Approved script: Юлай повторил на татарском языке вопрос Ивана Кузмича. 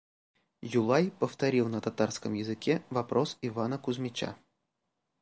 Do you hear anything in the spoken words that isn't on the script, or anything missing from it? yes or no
no